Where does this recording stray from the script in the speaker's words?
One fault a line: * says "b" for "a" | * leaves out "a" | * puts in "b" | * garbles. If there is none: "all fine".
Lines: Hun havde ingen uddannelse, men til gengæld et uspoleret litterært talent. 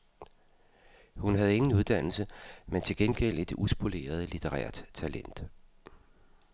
all fine